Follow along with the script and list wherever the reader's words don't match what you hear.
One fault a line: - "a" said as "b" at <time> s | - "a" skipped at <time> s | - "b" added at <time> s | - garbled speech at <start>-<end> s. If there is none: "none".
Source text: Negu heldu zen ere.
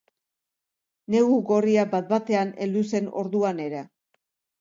- "gorria bat batean" added at 1.5 s
- "orduan" added at 3.2 s